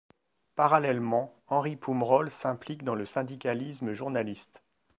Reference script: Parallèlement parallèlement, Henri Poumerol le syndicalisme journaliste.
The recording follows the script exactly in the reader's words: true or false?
false